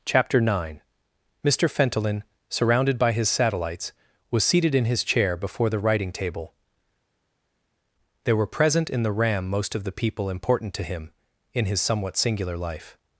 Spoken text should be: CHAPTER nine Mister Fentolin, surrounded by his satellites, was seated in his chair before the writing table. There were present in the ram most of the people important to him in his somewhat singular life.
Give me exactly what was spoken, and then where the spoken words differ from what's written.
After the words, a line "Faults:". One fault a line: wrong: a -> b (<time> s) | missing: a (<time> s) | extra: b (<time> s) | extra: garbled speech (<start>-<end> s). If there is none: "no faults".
CHAPTER nine Mister Fentolin, surrounded by his satellites, was seated in his chair before the writing table. There were present in the ram most of the people important to him in his somewhat singular life.
Faults:
no faults